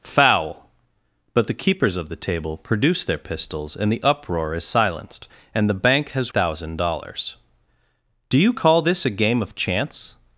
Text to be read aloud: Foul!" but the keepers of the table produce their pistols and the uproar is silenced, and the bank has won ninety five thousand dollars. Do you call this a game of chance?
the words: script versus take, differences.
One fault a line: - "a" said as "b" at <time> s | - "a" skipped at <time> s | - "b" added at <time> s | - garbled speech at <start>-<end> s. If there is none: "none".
- "won ninety five" skipped at 6.3 s